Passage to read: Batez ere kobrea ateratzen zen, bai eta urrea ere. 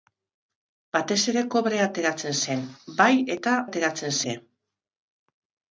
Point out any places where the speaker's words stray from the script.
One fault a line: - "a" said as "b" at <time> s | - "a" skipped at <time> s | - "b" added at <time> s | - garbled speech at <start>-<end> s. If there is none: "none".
- "urrea" said as "ateratzen" at 3.7 s